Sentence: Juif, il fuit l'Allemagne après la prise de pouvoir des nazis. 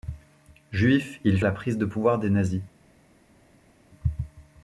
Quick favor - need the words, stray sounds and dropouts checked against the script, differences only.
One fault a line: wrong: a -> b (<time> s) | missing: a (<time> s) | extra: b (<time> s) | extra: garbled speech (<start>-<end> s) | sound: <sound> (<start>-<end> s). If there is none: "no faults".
missing: fuit l'Allemagne après (1.4 s)